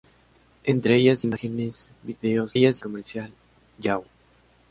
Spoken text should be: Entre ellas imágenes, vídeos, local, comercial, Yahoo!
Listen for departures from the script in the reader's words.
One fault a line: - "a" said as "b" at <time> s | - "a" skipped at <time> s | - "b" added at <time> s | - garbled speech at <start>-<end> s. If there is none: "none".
- "local" said as "ellas" at 2.5 s